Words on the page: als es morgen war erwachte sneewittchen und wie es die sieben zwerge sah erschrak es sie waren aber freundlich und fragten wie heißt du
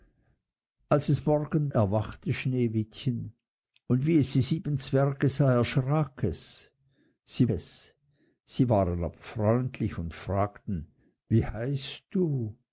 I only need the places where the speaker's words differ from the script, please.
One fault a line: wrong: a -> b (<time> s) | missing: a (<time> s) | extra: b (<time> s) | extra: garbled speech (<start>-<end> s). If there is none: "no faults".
missing: war (1.7 s)
extra: es sie (7.5 s)